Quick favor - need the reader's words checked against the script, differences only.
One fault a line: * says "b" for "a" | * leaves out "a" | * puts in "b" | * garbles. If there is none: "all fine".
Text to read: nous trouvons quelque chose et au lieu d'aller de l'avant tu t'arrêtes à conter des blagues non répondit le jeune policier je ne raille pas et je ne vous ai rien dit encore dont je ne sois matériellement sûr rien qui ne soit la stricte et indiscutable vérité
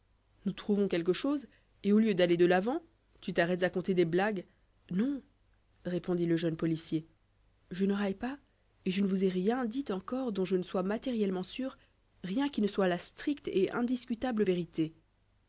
all fine